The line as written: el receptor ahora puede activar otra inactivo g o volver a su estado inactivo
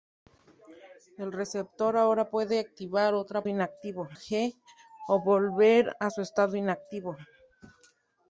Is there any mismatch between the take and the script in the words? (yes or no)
no